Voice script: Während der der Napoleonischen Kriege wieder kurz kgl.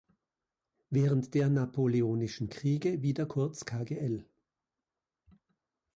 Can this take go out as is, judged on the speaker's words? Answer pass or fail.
fail